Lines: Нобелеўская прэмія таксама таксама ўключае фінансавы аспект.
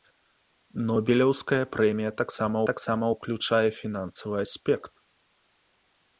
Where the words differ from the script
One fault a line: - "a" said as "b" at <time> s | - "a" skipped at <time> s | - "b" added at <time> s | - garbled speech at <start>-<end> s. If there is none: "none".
none